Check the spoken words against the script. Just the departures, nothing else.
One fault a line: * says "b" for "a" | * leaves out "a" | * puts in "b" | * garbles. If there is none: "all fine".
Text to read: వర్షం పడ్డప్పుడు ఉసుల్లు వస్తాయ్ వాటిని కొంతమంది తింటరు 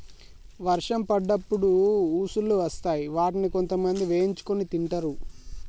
* puts in "వేయించుకొని"